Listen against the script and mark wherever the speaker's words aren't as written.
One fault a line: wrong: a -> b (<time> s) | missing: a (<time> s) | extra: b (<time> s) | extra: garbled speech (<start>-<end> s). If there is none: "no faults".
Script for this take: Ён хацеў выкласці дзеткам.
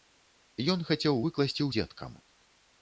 no faults